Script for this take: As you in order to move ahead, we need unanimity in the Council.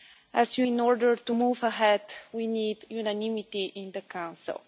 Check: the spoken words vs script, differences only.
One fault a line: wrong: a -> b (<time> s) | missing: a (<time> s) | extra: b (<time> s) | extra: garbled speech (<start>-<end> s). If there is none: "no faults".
no faults